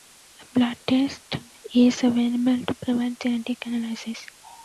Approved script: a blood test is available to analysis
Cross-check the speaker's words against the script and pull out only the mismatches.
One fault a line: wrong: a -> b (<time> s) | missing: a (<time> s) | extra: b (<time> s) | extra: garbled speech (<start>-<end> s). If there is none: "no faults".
extra: provide genetic (2.8 s)